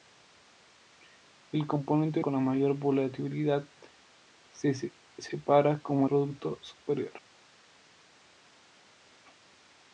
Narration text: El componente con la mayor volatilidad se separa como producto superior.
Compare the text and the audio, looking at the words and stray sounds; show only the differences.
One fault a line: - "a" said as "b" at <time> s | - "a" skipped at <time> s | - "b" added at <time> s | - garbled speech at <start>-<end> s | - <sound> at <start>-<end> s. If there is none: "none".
none